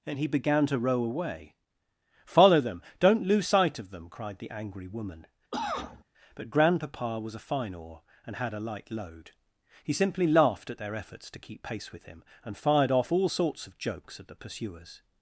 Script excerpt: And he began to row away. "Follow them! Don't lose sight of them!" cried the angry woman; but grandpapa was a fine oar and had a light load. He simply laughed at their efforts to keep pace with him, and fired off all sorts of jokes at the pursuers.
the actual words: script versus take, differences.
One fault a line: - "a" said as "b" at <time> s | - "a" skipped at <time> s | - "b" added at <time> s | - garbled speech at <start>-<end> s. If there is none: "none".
none